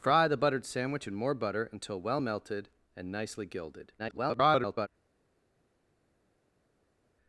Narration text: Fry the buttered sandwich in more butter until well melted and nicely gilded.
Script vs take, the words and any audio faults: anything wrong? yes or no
yes